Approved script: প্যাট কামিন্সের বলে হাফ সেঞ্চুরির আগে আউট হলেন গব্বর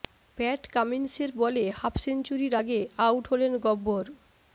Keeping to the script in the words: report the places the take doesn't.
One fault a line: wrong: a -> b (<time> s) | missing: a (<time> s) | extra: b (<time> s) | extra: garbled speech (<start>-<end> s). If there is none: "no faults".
no faults